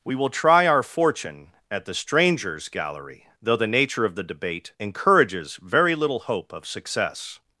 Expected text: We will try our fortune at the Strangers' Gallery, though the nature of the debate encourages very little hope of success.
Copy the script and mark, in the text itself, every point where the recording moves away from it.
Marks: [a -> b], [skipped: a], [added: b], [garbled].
We will try our fortune at the Strangers' Gallery, though the nature of the debate encourages very little hope of success.